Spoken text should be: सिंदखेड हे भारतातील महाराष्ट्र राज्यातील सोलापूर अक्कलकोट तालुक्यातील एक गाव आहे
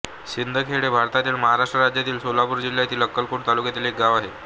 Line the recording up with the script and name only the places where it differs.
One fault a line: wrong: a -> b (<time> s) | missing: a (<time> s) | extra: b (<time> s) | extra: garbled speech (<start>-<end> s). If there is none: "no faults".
extra: जिल्ह्यातील (2.6 s)